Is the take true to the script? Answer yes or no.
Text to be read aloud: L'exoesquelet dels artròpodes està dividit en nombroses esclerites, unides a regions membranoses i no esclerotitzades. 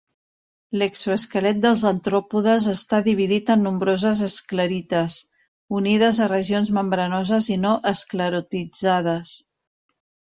yes